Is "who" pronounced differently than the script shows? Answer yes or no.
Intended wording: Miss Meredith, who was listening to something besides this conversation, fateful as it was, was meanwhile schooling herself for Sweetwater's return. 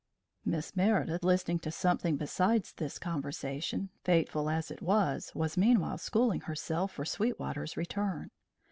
yes